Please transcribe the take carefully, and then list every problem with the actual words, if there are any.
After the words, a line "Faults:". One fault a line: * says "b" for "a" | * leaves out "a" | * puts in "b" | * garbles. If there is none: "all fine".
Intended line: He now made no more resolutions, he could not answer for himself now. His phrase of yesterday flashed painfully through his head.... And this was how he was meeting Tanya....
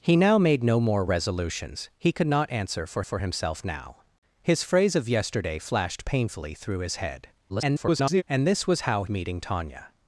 He now made no more resolutions, he could not answer for for himself now. His phrase of yesterday flashed painfully through his head.... [garbled] And this was how meeting Tanya....
Faults:
* puts in "for"
* garbles
* leaves out "he was"